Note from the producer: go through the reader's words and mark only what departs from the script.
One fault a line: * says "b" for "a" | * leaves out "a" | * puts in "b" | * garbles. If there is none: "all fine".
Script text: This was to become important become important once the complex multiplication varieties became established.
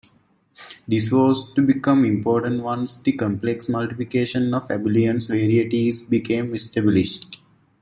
* leaves out "become important"
* puts in "of abelian"